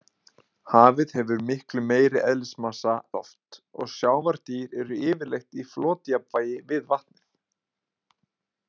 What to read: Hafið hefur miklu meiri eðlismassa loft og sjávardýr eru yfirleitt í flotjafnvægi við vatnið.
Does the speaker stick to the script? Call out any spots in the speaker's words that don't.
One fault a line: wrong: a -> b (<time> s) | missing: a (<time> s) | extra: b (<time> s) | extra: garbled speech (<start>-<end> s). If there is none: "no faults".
no faults